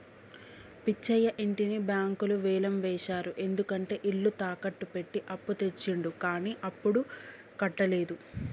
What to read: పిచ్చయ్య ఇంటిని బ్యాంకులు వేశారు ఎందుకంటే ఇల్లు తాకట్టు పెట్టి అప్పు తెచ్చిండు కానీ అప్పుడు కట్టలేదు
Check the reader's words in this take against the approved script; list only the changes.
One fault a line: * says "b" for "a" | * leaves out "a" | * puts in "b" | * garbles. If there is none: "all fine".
* puts in "వేలం"